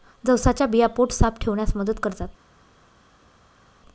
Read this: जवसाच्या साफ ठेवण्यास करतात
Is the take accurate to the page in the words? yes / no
no